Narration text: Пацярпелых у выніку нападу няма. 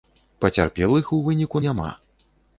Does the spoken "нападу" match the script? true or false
false